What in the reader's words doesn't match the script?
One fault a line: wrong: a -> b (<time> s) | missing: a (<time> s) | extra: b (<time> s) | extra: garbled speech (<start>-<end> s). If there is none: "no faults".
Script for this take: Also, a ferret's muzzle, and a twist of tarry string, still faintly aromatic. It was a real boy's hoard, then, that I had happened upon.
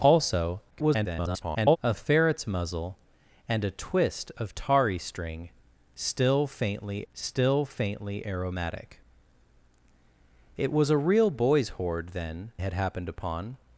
extra: garbled speech (0.7-1.8 s)
extra: still faintly (7.1 s)
missing: that I (12.5 s)